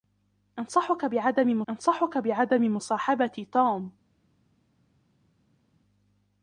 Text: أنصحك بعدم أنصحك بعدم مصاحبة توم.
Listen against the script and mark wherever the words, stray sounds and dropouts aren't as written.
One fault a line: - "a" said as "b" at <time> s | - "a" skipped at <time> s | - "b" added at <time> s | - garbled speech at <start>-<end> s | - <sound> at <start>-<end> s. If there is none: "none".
none